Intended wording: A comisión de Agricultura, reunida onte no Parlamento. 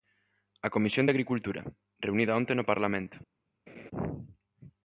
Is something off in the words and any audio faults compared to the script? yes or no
yes